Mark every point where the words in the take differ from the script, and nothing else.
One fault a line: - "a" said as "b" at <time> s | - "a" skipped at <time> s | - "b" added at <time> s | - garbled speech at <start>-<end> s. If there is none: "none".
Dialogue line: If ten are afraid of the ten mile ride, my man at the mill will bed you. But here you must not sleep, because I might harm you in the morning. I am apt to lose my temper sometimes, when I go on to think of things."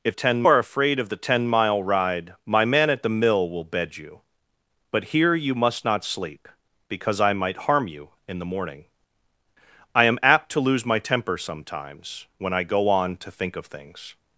none